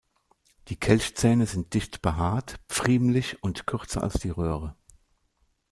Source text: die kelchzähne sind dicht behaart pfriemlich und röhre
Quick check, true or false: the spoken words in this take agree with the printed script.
false